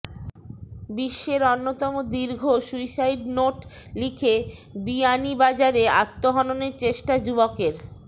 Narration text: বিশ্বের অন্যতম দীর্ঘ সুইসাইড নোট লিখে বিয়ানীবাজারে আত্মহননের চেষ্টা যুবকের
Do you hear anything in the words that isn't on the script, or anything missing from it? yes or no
no